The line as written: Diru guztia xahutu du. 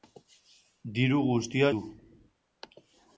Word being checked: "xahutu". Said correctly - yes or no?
no